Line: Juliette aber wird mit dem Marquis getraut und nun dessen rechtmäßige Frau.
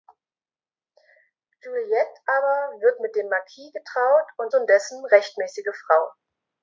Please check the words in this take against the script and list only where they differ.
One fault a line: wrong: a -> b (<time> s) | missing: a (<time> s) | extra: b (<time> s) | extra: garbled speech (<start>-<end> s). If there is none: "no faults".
no faults